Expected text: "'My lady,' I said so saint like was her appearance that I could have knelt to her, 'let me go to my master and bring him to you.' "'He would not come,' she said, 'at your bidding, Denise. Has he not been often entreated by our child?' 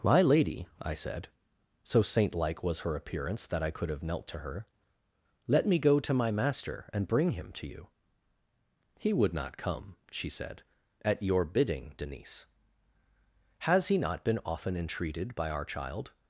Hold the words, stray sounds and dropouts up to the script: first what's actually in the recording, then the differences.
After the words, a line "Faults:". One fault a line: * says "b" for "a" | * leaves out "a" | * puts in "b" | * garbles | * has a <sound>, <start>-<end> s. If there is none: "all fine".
"'My lady,' I said so saint like was her appearance that I could have knelt to her, 'let me go to my master and bring him to you.' "'He would not come,' she said, 'at your bidding, Denise. Has he not been often entreated by our child?'
Faults:
all fine